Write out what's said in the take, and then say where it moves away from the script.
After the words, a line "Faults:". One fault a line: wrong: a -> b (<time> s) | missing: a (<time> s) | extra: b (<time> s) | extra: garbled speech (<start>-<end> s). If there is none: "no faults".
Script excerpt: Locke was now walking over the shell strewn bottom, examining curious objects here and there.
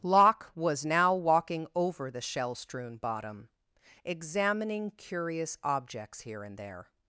Locke was now walking over the shell strewn bottom, examining curious objects here and there.
Faults:
no faults